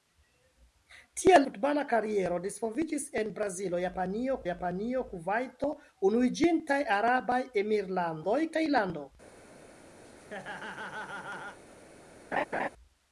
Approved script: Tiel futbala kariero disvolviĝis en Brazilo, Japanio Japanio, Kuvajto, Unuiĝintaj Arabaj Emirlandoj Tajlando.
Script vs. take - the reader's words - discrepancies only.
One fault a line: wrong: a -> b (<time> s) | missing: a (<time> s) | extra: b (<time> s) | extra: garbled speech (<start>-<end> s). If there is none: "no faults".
no faults